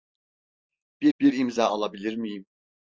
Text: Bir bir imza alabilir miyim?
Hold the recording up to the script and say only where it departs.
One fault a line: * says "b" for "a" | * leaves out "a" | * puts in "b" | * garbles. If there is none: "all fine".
all fine